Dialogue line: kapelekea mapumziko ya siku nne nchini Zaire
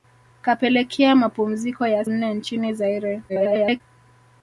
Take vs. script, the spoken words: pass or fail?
fail